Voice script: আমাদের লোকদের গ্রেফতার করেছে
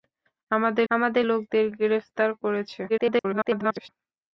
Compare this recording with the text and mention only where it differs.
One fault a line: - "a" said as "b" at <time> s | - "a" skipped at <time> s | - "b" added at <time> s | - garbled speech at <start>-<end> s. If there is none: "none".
- "আমাদের" added at 0.9 s
- garbled speech at 2.9-3.9 s